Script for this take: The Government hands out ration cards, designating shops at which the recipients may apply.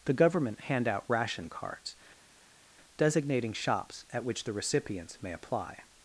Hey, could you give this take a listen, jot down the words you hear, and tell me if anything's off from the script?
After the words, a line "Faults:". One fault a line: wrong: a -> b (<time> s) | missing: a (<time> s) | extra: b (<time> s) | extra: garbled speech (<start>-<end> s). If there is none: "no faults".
The Government hand out ration cards, designating shops at which the recipients may apply.
Faults:
wrong: hands -> hand (0.6 s)